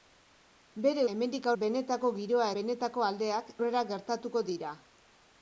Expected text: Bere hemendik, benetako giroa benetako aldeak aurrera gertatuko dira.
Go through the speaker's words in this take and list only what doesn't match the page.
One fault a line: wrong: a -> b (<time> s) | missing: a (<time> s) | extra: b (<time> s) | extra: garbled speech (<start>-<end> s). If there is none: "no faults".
no faults